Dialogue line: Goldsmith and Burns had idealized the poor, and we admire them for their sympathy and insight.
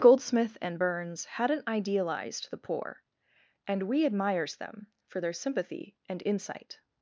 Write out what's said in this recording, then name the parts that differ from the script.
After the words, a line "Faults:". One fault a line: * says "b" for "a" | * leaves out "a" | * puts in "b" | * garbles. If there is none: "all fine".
Goldsmith and Burns hadn't idealized the poor, and we admires them for their sympathy and insight.
Faults:
* says "hadn't" for "had"
* says "admires" for "admire"